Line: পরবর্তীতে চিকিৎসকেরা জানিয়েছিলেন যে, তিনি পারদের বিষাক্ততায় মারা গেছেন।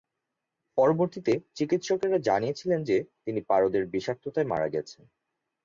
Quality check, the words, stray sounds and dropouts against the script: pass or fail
pass